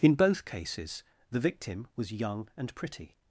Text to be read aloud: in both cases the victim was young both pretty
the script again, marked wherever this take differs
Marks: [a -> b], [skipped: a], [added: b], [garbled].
in both cases the victim was young [both -> and] pretty